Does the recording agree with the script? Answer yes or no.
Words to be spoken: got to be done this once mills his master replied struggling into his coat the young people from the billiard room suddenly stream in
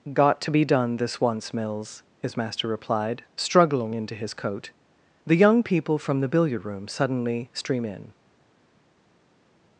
yes